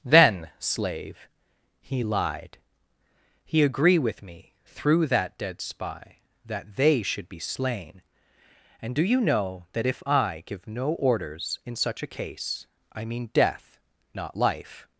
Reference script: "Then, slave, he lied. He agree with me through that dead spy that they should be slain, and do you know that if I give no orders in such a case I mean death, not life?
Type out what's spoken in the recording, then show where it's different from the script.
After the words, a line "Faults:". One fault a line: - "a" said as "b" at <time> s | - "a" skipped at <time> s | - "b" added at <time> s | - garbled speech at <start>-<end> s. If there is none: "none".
"Then, slave, he lied. He agree with me through that dead spy that they should be slain, and do you know that if I give no orders in such a case I mean death, not life?
Faults:
none